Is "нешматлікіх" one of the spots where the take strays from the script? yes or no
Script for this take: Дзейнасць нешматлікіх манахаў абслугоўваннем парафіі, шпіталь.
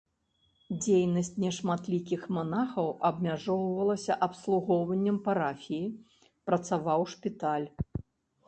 no